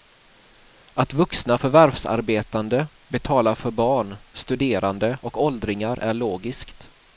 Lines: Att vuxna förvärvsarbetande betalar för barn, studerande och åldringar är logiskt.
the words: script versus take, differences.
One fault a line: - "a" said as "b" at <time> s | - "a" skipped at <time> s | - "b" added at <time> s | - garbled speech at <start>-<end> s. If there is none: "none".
none